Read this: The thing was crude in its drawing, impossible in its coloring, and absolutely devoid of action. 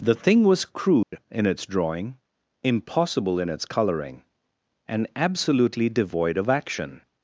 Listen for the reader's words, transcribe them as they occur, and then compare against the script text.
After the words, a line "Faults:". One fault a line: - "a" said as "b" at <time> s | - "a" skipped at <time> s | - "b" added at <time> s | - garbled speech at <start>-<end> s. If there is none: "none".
The thing was crude in its drawing, impossible in its coloring, and absolutely devoid of action.
Faults:
none